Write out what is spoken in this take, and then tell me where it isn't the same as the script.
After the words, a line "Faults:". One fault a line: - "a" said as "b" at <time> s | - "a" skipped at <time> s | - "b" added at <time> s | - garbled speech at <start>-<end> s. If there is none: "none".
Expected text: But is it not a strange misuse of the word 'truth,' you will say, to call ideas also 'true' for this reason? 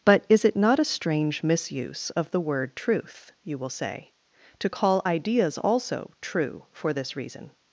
But is it not a strange misuse of the word 'truth,' you will say, to call ideas also 'true' for this reason?
Faults:
none